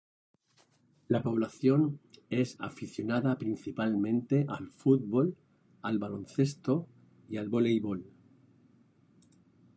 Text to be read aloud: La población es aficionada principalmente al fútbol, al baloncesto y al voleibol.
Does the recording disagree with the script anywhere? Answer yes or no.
no